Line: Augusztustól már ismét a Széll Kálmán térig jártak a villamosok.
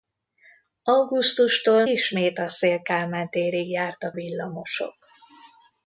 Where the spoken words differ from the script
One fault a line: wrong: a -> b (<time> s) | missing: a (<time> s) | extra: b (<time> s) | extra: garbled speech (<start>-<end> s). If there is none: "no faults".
missing: már (1.9 s)
missing: a (4.2 s)